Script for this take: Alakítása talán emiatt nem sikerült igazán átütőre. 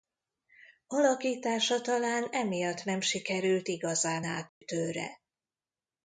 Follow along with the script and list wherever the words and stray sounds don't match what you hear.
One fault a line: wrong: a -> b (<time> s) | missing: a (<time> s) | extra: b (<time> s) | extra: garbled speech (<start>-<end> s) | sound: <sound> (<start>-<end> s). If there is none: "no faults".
sound: dropout (4.5-4.6 s)